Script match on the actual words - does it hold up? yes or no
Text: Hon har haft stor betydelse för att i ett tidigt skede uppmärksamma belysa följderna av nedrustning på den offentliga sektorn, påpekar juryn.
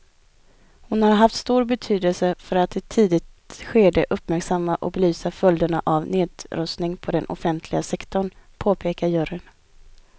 no